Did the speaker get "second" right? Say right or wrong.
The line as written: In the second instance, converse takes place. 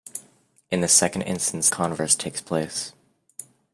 right